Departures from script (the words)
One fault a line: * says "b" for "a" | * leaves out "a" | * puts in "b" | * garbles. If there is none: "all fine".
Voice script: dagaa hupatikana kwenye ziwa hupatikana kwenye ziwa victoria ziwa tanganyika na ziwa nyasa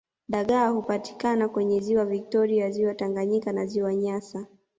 * leaves out "hupatikana kwenye ziwa"